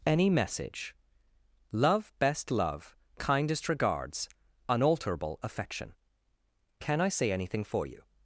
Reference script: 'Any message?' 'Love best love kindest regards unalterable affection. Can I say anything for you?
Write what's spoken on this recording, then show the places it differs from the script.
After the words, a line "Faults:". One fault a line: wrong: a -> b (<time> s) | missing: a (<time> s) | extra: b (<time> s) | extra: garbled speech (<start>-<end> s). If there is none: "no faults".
'Any message?' 'Love best love kindest regards unalterable affection. Can I say anything for you?
Faults:
no faults